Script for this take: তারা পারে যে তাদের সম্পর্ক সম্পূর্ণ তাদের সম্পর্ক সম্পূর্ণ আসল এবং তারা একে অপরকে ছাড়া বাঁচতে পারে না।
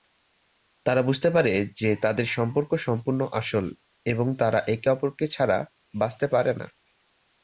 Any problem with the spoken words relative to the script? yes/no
yes